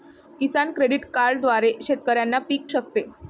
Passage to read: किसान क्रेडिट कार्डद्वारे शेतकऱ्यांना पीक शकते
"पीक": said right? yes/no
yes